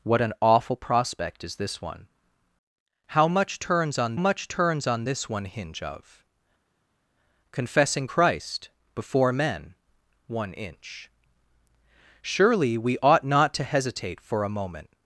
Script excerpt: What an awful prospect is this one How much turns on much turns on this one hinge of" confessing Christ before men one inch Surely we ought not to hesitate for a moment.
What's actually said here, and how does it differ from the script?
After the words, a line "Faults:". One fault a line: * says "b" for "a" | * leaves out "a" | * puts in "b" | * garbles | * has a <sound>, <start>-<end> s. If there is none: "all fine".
What an awful prospect is this one How much turns on much turns on this one hinge of" confessing Christ before men one inch Surely we ought not to hesitate for a moment.
Faults:
all fine